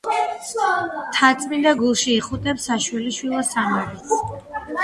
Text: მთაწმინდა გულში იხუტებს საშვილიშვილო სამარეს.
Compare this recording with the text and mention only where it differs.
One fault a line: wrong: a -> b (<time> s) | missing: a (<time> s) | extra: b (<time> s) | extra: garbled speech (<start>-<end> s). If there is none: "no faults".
no faults